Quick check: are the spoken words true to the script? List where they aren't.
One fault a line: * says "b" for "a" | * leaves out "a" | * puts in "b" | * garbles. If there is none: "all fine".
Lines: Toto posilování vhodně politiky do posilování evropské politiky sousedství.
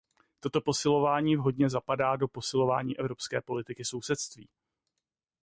* says "zapadá" for "politiky"